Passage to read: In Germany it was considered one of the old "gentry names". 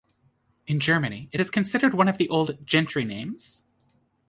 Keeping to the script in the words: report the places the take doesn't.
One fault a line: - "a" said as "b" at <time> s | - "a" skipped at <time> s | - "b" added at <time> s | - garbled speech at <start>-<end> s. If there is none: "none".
- "was" said as "is" at 1.4 s